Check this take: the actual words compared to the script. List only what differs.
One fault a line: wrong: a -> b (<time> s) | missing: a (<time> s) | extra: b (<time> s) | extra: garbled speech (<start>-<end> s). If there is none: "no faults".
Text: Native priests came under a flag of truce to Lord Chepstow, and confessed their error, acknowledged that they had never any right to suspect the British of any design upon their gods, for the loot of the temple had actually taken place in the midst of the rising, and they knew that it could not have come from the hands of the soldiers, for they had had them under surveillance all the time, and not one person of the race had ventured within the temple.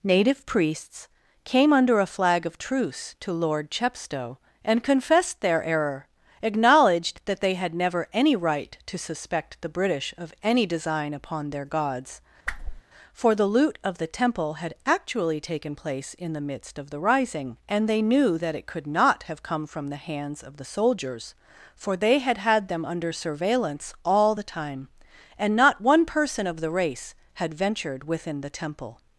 no faults